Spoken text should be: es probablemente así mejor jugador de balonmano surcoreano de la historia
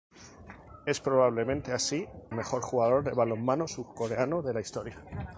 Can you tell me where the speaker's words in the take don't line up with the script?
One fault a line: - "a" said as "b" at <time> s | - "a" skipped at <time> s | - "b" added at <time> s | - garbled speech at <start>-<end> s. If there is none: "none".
none